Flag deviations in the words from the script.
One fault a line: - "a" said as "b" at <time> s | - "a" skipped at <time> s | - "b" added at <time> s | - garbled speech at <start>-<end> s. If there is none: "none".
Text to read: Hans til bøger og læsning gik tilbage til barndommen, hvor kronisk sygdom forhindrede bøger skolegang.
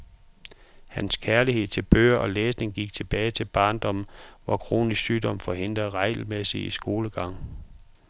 - "kærlighed" added at 1.2 s
- "bøger" said as "regelmæssig" at 5.9 s